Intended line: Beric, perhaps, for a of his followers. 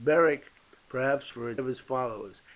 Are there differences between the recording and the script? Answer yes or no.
no